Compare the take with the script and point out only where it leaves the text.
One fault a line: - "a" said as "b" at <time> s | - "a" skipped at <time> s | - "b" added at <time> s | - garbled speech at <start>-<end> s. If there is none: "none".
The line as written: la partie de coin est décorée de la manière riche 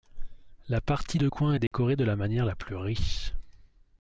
- "la plus" added at 2.4 s